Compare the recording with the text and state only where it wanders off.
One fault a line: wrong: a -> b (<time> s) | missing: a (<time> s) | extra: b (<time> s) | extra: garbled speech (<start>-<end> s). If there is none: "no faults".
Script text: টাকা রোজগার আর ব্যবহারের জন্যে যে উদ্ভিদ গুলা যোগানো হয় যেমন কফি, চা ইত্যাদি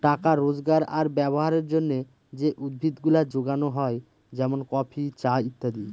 no faults